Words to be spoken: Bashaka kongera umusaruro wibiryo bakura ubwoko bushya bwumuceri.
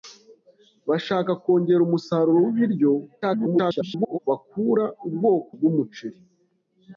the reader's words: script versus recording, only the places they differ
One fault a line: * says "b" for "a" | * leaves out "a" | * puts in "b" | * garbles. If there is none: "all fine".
* garbles
* leaves out "bushya"